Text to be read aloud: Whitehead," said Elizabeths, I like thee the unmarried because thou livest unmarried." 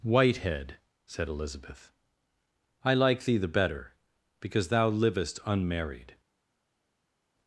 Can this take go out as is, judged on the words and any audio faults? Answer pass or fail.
fail